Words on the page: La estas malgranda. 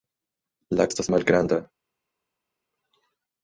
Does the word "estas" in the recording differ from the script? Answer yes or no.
no